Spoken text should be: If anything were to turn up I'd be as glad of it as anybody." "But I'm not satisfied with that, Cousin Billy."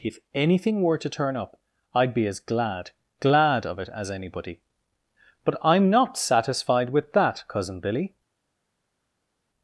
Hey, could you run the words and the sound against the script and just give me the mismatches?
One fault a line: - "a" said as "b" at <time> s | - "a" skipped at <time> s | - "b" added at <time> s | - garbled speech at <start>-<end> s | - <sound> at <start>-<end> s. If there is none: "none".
- "glad" added at 3.2 s